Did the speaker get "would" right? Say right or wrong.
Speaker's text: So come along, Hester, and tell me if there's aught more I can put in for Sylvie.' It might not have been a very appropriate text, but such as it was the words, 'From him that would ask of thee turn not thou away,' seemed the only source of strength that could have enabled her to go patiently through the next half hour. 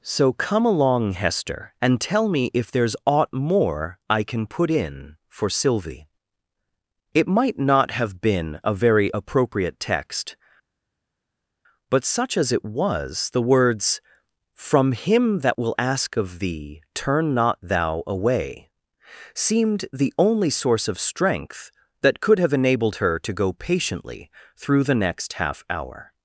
wrong